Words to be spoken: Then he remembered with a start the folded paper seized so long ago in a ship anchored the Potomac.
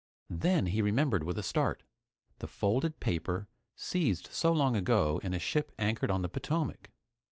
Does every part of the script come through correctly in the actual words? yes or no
no